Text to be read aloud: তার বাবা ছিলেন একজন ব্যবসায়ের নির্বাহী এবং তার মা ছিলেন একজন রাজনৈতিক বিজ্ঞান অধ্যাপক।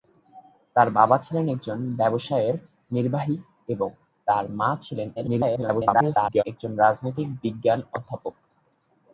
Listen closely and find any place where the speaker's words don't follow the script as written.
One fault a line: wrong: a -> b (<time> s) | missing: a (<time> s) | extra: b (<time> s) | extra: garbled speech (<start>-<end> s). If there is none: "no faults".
extra: garbled speech (5.2-6.4 s)